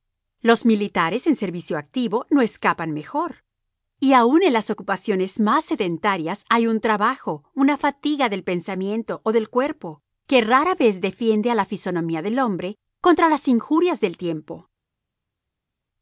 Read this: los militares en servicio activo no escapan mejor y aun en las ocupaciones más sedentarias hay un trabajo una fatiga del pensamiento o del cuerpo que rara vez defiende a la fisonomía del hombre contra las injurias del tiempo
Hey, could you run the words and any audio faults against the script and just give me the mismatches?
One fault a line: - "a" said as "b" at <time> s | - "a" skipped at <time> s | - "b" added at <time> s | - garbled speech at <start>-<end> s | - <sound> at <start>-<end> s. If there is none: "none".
none